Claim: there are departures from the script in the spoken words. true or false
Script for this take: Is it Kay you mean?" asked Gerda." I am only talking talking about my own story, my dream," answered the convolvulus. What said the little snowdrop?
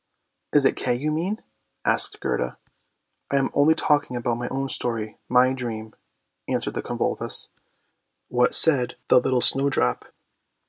true